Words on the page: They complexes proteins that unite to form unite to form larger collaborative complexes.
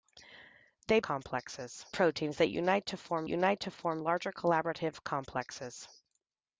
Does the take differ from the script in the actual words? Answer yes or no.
no